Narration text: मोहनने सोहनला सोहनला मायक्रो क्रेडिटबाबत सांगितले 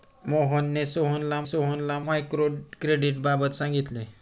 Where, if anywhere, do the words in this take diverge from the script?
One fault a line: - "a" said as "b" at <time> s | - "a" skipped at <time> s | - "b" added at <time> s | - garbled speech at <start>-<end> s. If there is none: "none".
none